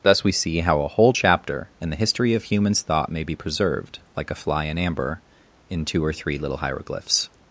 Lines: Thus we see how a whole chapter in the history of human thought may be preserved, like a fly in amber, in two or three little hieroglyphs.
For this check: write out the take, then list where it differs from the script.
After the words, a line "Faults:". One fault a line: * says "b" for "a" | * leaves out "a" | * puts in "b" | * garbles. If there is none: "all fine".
Thus we see how a whole chapter in the history of humans thought may be preserved, like a fly in amber, in two or three little hieroglyphs.
Faults:
* says "humans" for "human"